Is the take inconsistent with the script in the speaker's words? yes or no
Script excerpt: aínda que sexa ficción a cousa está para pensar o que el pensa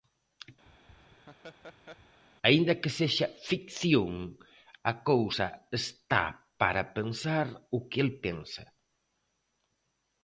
no